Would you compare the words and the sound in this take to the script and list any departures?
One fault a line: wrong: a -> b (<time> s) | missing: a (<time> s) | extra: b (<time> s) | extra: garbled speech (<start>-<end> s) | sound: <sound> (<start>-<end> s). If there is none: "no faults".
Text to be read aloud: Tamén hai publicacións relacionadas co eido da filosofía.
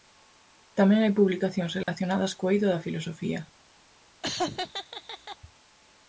sound: dropout (1.8-1.9 s)
sound: laugh (4.2-5.4 s)